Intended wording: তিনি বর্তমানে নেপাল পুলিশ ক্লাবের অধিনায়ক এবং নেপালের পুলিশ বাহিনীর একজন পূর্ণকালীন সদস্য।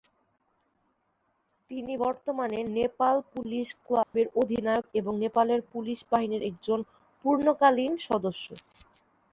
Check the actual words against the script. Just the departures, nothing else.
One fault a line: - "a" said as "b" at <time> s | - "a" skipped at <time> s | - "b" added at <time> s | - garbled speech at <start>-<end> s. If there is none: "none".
none